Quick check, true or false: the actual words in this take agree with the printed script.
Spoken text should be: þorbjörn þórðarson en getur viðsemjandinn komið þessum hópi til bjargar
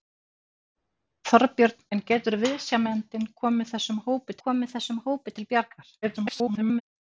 false